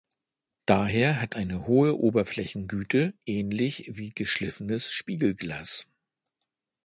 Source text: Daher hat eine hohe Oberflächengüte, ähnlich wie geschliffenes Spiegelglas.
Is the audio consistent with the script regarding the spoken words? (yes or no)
yes